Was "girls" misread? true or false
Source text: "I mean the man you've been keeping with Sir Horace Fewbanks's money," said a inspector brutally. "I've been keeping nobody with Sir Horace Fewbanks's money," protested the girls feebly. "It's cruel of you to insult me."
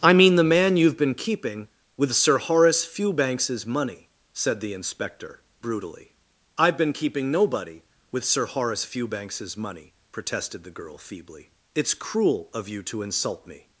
true